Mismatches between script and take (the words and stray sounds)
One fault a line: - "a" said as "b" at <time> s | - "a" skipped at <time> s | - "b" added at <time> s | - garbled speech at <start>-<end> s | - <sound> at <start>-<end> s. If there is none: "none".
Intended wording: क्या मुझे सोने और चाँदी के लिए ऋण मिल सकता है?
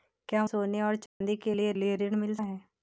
- "मुझे" skipped at 0.5 s
- dropout at 1.1-1.2 s
- "लिए" added at 1.7 s
- "सकता" skipped at 2.3 s